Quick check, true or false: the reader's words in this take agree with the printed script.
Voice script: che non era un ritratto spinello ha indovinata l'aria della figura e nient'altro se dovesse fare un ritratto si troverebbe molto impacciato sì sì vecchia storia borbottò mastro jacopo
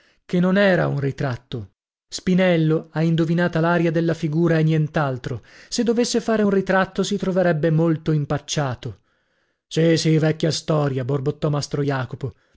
true